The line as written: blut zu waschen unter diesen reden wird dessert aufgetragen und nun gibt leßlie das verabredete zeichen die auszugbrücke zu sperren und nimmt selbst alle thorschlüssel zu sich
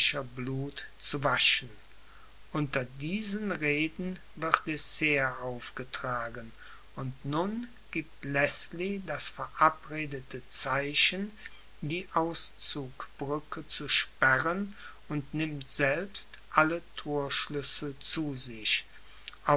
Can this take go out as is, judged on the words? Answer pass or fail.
pass